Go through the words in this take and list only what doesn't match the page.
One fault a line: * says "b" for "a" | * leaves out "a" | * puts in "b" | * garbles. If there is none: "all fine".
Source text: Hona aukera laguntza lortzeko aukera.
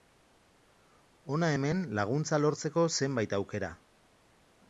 * says "hemen" for "aukera"
* puts in "zenbait"